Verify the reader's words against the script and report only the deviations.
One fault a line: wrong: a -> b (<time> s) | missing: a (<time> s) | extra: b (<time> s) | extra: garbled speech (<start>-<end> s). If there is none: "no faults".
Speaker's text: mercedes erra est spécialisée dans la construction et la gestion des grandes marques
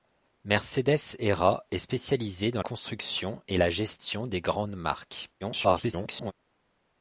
missing: la (2.6 s)
extra: garbled speech (5.4-6.3 s)